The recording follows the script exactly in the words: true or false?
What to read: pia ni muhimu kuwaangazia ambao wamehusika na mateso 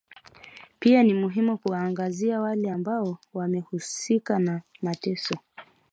false